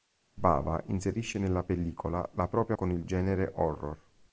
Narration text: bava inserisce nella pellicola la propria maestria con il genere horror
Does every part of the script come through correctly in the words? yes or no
no